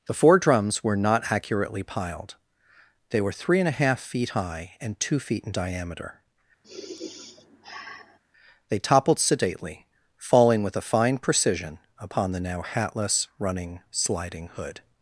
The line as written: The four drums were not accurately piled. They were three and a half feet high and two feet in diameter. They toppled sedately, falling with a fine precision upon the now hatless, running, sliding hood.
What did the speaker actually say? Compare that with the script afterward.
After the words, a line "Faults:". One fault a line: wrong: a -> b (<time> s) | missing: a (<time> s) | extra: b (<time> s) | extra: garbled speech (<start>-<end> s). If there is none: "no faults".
The four drums were not accurately piled. They were three and a half feet high and two feet in diameter. They toppled sedately, falling with a fine precision upon the now hatless, running, sliding hood.
Faults:
no faults